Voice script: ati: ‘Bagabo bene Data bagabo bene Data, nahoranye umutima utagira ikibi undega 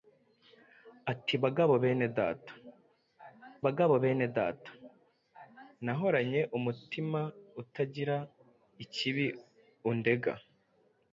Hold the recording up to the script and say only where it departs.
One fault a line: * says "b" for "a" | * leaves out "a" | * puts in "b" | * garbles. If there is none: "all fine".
all fine